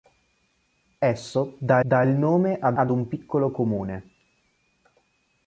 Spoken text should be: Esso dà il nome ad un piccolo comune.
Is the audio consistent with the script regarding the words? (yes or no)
no